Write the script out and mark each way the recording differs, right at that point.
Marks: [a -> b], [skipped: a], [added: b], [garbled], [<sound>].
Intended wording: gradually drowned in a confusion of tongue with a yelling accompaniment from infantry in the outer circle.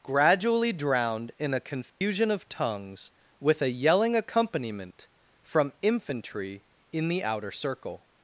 gradually drowned in a confusion [dropout] of [tongue -> tongues] with a yelling accompaniment from infantry in the outer circle.